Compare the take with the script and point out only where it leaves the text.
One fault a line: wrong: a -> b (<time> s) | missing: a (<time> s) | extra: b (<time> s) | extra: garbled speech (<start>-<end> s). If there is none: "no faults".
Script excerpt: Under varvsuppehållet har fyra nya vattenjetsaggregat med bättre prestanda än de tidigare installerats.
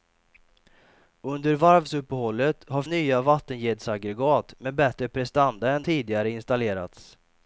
missing: fyra (2.8 s)
missing: de (5.8 s)